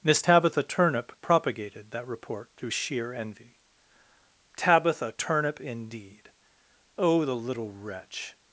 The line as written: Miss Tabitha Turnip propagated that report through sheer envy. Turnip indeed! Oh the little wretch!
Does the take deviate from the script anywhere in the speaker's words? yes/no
yes